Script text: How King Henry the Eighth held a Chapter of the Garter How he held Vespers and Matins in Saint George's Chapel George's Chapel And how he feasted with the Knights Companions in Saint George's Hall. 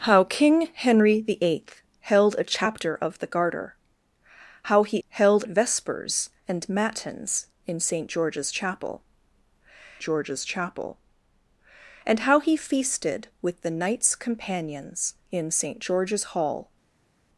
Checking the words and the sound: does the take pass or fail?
pass